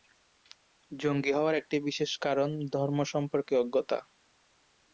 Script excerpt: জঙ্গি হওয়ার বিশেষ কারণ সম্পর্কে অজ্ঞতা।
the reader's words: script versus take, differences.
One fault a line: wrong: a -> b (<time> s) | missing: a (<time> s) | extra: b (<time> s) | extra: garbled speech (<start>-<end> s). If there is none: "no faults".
extra: একটি (1.5 s)
extra: ধর্ম (2.7 s)